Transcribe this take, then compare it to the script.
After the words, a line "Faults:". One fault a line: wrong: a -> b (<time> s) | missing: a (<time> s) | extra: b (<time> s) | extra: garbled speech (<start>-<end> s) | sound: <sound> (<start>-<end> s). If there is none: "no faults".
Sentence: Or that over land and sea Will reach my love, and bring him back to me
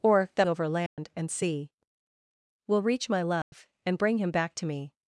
Or that over land and sea Will reach my love, and bring him back to me
Faults:
sound: dropout (0.9-1.0 s)
sound: dropout (3.4-3.5 s)